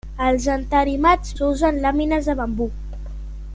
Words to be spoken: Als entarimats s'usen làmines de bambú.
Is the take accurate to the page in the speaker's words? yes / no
yes